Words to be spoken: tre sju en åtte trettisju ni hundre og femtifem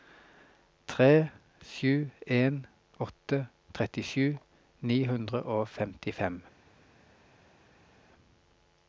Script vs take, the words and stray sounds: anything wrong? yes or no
no